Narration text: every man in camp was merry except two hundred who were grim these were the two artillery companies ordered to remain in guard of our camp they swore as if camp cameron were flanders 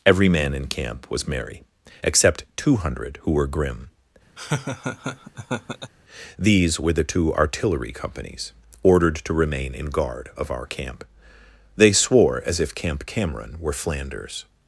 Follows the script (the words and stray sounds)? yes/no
no